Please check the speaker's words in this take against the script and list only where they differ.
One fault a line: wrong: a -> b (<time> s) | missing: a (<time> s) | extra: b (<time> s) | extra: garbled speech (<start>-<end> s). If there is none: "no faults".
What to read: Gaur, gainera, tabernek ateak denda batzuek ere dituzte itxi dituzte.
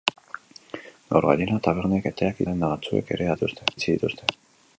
no faults